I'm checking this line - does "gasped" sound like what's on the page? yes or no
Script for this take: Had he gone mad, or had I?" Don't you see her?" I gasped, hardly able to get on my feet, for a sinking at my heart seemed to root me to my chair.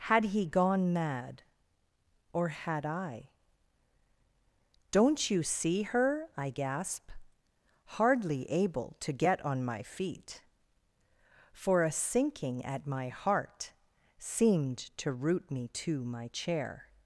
no